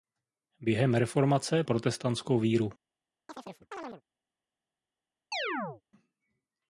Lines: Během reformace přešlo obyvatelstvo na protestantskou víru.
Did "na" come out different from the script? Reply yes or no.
yes